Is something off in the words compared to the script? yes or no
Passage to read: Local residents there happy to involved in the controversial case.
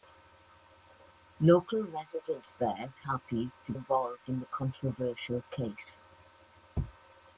no